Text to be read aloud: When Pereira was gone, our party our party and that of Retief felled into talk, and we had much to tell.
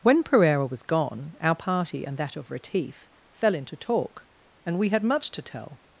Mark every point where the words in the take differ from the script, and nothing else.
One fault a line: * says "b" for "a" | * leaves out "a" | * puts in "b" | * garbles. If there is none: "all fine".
* leaves out "our party"
* says "fell" for "felled"